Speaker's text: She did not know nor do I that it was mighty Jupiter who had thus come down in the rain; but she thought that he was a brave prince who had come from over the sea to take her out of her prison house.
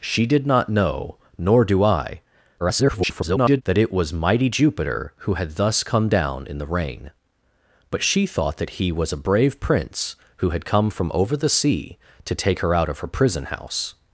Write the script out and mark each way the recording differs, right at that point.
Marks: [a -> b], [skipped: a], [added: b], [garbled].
She did not know nor do I [garbled] that it was mighty Jupiter who had thus come down in the rain; but she thought that he was a brave prince who had come from over the sea to take her out of her prison house.